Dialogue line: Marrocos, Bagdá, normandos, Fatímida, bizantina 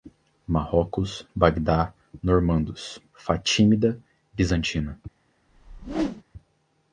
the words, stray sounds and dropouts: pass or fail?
fail